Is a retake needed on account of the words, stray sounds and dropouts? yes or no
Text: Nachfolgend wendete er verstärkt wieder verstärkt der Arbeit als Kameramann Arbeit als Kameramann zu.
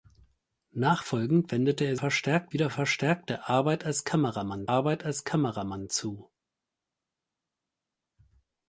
no